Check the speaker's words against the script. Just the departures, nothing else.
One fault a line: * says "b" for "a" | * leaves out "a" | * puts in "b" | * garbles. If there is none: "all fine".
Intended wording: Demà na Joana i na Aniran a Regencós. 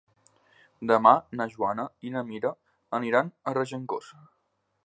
* puts in "Mira"